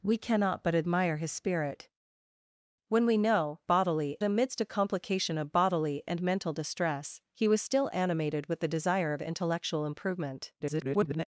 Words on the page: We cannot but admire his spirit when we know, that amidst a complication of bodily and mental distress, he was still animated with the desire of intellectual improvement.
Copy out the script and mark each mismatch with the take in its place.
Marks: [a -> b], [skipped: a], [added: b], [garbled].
We cannot but admire his spirit when we know, [that -> bodily] amidst a complication of bodily and mental distress, he was still animated with the desire of intellectual improvement. [garbled]